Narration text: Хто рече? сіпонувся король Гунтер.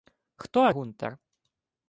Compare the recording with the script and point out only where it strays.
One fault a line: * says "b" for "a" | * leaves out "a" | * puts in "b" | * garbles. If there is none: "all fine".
* leaves out "рече сіпонувся король"